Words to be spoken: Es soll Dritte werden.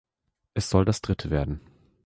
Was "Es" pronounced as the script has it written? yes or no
yes